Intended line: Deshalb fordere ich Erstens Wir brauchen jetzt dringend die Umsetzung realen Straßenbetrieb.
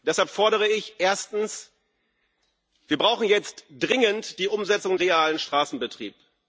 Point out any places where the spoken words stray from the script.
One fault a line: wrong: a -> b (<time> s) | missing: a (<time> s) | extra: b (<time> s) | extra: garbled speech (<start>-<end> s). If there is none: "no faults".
no faults